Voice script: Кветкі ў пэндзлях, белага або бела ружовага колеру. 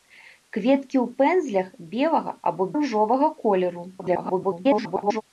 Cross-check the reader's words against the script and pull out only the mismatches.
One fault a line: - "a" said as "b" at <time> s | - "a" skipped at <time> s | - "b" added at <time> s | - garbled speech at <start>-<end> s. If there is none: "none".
- "бела" skipped at 2.7 s
- garbled speech at 4.0-5.2 s